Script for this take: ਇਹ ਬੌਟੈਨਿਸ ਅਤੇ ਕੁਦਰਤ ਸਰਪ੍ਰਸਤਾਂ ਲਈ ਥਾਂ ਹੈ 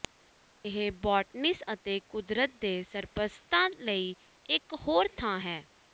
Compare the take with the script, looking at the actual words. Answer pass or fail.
fail